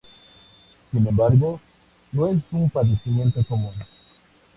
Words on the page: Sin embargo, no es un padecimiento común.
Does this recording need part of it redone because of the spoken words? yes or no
no